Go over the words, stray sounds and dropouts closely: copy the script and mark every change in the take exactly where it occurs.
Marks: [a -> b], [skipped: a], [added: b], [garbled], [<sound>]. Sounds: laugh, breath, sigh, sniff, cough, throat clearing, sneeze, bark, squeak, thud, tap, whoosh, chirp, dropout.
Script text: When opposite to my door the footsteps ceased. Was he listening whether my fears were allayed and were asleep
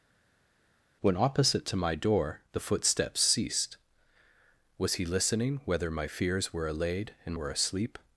When opposite to my door the footsteps ceased. Was he listening whether my fears were allayed and were asleep